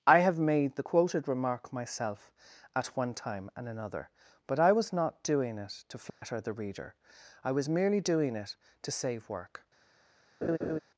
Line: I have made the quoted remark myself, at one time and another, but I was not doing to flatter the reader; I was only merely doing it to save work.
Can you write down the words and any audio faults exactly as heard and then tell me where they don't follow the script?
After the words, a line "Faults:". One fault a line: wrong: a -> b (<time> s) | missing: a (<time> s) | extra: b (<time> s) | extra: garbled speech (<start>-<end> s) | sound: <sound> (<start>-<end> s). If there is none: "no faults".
I have made the quoted remark myself, at one time and another, but I was not doing it to flatter the reader; I was merely doing it to save work.
Faults:
extra: it (5.6 s)
sound: dropout (6.1-6.2 s)
missing: only (7.7 s)
sound: laugh (10.4-10.8 s)